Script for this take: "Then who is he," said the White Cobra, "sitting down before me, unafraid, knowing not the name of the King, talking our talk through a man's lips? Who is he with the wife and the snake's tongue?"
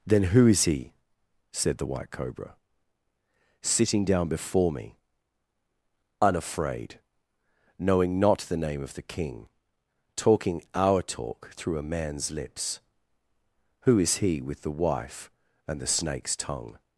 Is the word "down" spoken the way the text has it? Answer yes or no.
yes